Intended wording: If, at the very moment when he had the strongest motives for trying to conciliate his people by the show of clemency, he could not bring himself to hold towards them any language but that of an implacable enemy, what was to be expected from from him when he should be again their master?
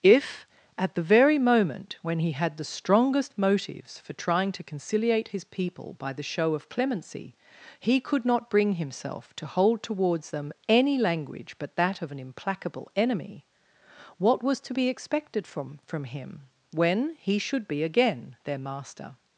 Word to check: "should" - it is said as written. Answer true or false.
true